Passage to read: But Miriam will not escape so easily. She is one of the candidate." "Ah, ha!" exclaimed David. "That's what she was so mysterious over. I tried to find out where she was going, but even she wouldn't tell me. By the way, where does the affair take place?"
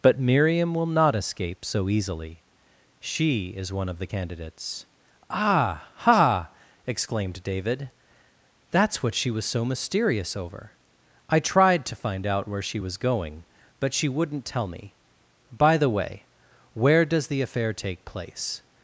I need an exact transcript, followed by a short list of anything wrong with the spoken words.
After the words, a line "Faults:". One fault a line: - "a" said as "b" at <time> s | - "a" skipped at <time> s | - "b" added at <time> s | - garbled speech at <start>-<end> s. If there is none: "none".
But Miriam will not escape so easily. She is one of the candidates." "Ah, ha!" exclaimed David. "That's what she was so mysterious over. I tried to find out where she was going, but she wouldn't tell me. By the way, where does the affair take place?"
Faults:
- "candidate" said as "candidates" at 4.0 s
- "even" skipped at 13.9 s